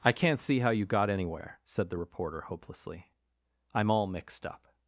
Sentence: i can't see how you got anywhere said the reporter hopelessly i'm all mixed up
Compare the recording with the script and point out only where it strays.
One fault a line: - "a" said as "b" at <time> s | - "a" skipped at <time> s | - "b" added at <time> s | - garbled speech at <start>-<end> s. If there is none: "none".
none